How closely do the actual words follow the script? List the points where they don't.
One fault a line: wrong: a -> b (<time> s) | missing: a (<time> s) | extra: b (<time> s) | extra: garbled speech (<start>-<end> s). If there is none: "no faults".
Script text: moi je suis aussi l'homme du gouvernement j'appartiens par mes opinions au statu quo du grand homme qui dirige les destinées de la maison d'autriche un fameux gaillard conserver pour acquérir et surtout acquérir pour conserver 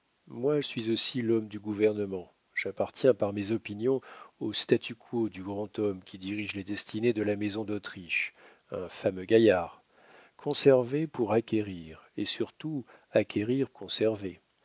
missing: je (0.6 s)
missing: pour (13.7 s)